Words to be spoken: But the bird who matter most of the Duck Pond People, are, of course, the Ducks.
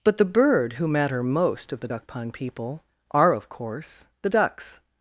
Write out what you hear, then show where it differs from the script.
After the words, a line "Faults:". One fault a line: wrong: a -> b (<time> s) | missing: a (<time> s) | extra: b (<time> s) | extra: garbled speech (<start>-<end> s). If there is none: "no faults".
But the bird who matter most of the Duck Pond People, are, of course, the Ducks.
Faults:
no faults